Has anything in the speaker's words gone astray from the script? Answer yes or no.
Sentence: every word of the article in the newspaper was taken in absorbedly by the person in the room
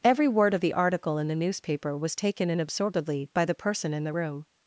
no